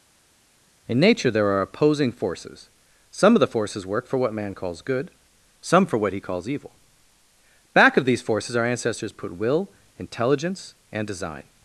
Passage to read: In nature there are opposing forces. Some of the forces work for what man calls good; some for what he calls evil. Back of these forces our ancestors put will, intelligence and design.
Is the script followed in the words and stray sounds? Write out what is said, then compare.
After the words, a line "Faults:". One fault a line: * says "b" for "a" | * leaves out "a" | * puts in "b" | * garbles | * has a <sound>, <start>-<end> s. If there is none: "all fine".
In nature there are opposing forces. Some of the forces work for what man calls good; some for what he calls evil. Back of these forces our ancestors put will, intelligence and design.
Faults:
all fine